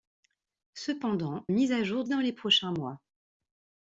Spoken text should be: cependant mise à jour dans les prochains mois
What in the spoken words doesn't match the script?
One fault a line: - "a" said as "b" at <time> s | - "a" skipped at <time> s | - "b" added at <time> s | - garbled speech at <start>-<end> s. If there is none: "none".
none